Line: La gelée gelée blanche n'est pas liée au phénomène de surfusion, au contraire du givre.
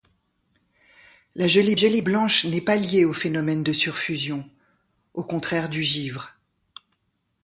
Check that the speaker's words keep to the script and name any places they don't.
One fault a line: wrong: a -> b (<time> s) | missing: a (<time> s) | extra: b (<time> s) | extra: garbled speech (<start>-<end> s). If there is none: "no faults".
no faults